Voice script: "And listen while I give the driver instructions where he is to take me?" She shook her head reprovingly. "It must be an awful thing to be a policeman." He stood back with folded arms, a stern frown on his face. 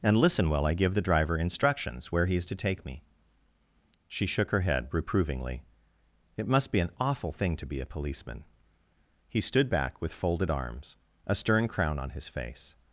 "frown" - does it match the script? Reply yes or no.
no